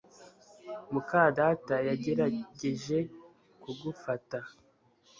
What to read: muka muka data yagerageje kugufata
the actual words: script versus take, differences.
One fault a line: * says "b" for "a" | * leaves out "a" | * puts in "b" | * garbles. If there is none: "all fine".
* leaves out "muka"